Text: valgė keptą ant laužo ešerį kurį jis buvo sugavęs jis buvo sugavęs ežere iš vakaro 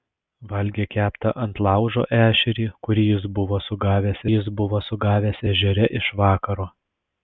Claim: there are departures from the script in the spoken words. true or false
false